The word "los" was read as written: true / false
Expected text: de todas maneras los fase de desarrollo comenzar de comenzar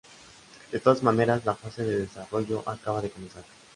false